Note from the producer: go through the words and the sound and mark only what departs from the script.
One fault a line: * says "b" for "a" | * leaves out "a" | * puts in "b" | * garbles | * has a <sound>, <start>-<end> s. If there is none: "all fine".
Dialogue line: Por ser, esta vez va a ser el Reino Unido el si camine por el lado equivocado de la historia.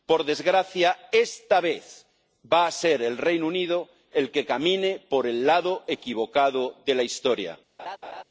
* says "desgracia" for "ser"
* says "que" for "si"
* has a laugh, 7.8-8.2 s